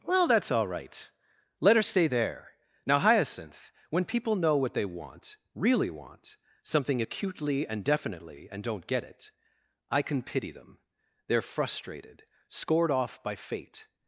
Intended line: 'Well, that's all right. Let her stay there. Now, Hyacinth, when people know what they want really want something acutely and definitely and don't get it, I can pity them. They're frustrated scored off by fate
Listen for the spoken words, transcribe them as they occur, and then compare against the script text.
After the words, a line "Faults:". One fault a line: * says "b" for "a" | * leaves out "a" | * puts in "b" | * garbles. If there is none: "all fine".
'Well, that's all right. Let her stay there. Now, Hyacinth, when people know what they want really want something acutely and definitely and don't get it, I can pity them. They're frustrated scored off by fate
Faults:
all fine